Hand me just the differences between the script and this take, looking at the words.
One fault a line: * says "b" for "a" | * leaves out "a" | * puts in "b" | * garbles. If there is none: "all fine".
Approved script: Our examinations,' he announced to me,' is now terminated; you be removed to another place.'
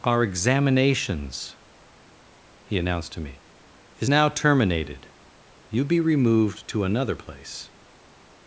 all fine